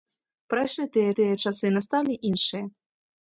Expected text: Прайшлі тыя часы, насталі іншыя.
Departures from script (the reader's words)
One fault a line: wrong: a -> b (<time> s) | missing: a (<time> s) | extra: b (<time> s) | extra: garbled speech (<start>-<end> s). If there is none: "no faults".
extra: тыя (1.2 s)